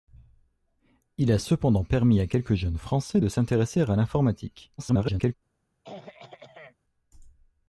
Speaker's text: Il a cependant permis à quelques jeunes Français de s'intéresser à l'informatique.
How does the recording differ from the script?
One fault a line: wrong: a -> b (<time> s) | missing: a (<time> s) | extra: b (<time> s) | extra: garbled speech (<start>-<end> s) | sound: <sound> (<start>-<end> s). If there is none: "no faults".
extra: garbled speech (4.8-5.3 s)
sound: throat clearing (5.8-6.8 s)